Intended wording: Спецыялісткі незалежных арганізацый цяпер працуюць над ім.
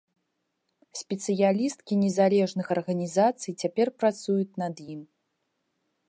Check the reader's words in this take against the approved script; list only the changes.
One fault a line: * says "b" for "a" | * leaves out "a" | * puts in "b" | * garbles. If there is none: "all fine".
all fine